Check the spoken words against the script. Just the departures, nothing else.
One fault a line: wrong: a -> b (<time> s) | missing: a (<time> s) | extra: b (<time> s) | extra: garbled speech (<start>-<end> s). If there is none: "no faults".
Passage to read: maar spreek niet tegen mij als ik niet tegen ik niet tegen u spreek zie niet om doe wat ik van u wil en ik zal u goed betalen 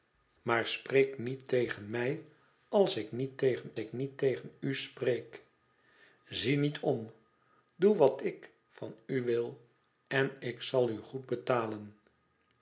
no faults